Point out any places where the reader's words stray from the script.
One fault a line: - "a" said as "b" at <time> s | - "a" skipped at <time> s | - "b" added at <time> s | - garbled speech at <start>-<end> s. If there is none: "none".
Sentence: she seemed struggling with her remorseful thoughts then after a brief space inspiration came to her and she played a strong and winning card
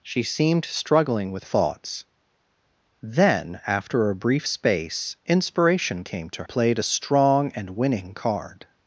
- "her remorseful" skipped at 1.4 s
- "her and she" skipped at 6.4 s